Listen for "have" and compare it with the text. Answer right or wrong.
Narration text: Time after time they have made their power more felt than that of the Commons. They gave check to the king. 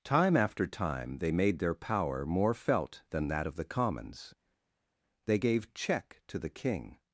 wrong